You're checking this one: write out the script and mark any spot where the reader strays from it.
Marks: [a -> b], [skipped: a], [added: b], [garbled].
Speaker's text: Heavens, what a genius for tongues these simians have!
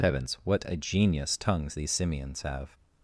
Heavens, what a genius [skipped: for] tongues these simians have!